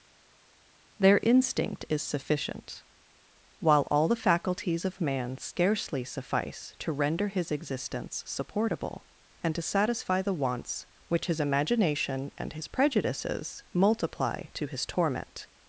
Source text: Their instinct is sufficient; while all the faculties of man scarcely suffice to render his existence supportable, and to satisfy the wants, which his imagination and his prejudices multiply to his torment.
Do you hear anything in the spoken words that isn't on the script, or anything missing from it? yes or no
no